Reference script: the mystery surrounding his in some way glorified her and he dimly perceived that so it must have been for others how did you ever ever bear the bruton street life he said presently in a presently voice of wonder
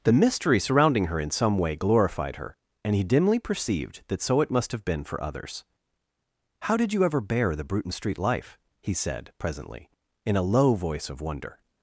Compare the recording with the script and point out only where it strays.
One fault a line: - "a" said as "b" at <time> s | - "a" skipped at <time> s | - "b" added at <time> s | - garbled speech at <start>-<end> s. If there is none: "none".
- "his" said as "her" at 1.1 s
- "ever" skipped at 7.2 s
- "presently" said as "low" at 10.4 s